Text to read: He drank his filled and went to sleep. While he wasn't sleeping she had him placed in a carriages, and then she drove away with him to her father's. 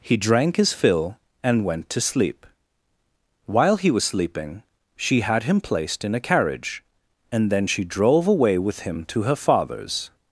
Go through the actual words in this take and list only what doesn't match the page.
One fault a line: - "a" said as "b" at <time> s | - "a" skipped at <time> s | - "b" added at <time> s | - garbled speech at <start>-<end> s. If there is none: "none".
- "filled" said as "fill" at 0.7 s
- "wasn't" said as "was" at 3.9 s
- "carriages" said as "carriage" at 6.2 s